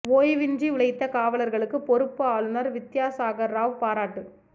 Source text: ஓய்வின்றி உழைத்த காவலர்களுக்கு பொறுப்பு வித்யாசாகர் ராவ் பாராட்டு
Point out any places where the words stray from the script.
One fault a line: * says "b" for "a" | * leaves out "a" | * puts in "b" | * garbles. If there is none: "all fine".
* puts in "ஆளுநர்"